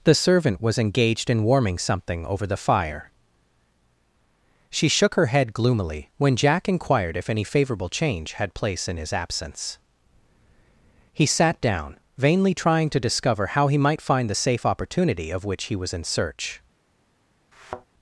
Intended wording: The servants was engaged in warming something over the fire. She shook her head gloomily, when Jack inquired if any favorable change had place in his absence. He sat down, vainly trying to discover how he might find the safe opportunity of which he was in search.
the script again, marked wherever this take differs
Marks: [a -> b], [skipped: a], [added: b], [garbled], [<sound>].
The [servants -> servant] was engaged in warming something over the fire. She shook her head gloomily, when Jack inquired if any favorable change had place in his absence. He sat down, vainly trying to discover how he might find the safe opportunity of which he was in search. [thud]